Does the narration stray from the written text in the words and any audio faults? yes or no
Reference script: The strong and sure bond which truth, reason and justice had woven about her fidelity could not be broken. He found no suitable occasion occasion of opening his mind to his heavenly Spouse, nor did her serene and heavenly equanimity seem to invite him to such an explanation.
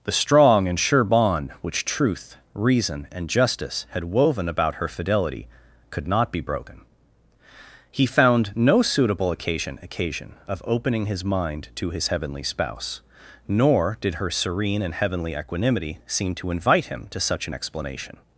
no